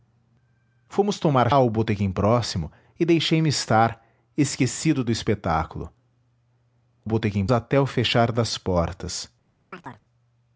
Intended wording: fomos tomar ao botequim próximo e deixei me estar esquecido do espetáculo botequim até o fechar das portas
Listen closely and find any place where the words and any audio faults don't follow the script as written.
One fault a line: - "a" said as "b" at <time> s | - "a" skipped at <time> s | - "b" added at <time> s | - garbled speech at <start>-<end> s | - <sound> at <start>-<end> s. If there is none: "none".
- chirp at 9.7-10.0 s